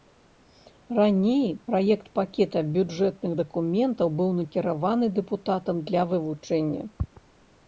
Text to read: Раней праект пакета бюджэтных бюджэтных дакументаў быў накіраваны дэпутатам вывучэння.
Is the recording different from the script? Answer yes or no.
yes